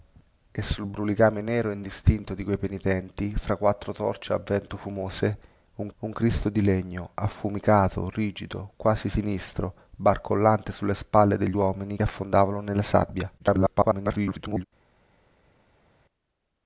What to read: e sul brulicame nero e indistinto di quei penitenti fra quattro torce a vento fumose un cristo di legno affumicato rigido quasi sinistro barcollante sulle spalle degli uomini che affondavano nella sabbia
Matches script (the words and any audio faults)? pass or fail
fail